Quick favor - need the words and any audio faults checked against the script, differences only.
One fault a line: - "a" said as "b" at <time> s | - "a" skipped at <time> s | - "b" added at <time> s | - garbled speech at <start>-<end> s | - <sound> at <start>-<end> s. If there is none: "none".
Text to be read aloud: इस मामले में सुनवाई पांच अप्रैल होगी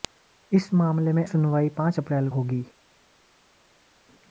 none